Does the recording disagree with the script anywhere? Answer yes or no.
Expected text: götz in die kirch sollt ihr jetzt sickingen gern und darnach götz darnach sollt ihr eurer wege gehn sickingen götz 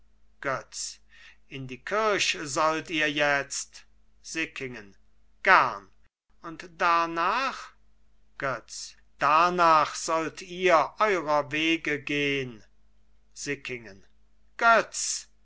no